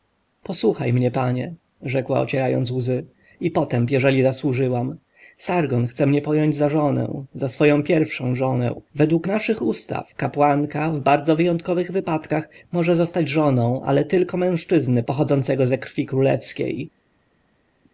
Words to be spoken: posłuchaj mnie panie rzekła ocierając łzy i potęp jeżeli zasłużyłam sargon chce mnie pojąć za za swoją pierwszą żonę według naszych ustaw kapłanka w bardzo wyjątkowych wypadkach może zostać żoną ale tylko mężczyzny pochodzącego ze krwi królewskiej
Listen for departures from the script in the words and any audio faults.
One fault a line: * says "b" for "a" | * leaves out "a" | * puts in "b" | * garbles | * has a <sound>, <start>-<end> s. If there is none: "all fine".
* puts in "żonę"